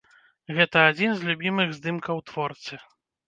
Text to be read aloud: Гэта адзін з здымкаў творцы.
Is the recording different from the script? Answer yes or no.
yes